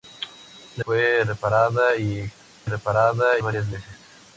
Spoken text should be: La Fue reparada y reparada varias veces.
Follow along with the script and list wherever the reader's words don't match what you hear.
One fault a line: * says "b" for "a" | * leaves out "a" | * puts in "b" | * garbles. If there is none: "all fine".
all fine